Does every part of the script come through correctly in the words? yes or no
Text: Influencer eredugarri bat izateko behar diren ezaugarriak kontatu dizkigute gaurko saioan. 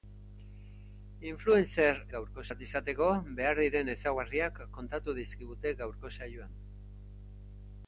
no